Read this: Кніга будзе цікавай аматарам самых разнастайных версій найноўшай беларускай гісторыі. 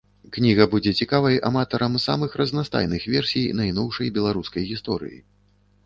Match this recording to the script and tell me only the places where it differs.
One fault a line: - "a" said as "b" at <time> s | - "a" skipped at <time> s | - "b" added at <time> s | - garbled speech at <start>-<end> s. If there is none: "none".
none